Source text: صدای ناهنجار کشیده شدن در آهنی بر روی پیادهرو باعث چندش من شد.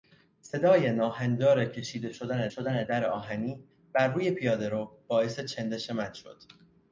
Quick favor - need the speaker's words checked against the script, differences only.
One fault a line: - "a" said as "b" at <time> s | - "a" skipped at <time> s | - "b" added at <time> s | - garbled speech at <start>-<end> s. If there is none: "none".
- "شدن" added at 2.5 s